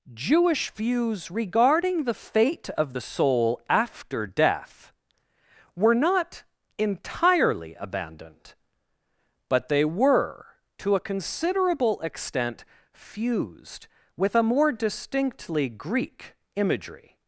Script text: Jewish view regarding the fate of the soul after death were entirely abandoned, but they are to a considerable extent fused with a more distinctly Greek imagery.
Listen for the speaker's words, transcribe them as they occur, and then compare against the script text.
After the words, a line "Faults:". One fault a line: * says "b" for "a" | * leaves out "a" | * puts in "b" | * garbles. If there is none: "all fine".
Jewish views regarding the fate of the soul after death were not entirely abandoned, but they were to a considerable extent fused with a more distinctly Greek imagery.
Faults:
* says "views" for "view"
* puts in "not"
* says "were" for "are"